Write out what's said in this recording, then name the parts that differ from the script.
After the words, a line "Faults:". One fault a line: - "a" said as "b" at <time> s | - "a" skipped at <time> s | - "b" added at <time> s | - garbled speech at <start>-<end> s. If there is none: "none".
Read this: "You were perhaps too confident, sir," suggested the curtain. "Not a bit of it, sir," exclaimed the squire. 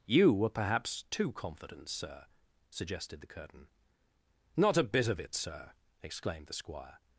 "You were perhaps too confident, sir," suggested the curtain. "Not a bit of it, sir," exclaimed the squire.
Faults:
none